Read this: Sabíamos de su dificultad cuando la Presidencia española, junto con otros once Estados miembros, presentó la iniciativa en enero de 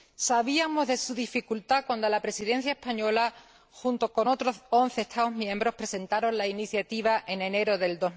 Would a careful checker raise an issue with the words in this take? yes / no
no